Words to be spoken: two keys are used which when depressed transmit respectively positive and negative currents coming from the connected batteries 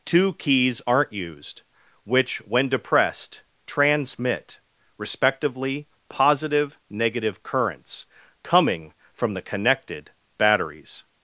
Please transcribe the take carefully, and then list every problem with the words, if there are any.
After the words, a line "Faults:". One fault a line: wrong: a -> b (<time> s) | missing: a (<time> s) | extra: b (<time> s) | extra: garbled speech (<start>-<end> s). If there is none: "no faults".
two keys aren't used which when depressed transmit respectively positive negative currents coming from the connected batteries
Faults:
wrong: are -> aren't (0.9 s)
missing: and (6.8 s)